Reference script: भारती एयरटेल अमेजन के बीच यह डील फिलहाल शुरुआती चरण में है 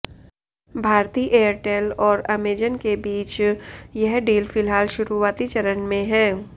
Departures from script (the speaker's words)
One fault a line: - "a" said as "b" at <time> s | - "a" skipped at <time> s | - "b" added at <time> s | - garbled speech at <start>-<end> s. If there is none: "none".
- "और" added at 2.0 s